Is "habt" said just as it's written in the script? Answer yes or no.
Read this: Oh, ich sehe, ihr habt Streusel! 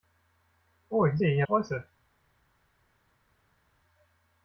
no